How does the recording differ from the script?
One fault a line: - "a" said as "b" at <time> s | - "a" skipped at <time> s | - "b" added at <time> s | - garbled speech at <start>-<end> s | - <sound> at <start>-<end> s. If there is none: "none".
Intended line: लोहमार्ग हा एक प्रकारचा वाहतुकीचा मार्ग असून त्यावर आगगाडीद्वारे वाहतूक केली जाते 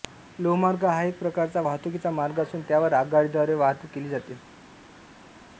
none